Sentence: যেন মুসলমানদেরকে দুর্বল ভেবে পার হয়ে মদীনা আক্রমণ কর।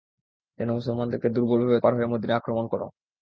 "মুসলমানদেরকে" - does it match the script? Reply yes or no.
yes